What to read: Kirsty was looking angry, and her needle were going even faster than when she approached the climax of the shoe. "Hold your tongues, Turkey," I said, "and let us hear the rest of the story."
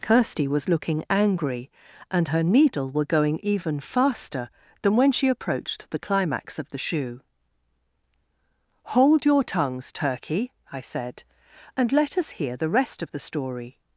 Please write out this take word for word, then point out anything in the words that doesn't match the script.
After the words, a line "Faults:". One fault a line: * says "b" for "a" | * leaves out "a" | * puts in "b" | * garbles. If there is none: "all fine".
Kirsty was looking angry, and her needle were going even faster than when she approached the climax of the shoe. "Hold your tongues, Turkey," I said, "and let us hear the rest of the story."
Faults:
all fine